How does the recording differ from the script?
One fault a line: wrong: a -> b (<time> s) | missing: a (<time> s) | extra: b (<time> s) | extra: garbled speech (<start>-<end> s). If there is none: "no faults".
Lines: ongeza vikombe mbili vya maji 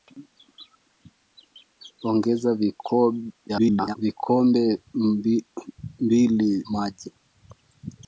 extra: garbled speech (3.5-4.0 s)
missing: vya (6.5 s)